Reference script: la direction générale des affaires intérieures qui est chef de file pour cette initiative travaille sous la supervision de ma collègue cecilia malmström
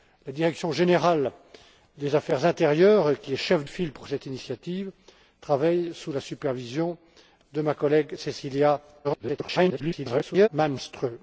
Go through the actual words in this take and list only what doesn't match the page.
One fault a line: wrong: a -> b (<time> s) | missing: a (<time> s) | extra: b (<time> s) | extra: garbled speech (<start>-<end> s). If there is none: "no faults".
missing: de (3.6 s)
extra: garbled speech (9.0-10.5 s)